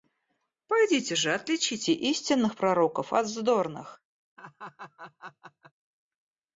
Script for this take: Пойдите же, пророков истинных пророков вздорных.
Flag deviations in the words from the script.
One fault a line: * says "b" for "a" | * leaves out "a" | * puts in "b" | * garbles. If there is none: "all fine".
* says "отличите" for "пророков"
* puts in "от"